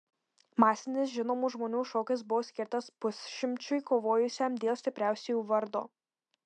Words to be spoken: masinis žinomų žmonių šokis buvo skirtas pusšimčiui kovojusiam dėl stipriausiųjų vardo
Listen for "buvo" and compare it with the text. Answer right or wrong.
right